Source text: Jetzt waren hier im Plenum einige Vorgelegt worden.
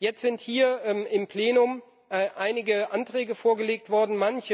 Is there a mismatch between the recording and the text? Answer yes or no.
yes